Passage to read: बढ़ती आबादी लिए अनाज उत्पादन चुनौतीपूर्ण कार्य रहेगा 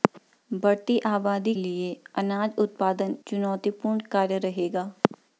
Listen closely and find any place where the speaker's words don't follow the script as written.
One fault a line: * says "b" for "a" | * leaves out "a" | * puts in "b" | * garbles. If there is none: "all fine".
all fine